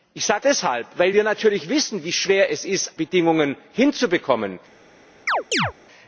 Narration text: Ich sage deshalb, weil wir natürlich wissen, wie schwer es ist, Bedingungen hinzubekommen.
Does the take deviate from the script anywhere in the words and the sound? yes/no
yes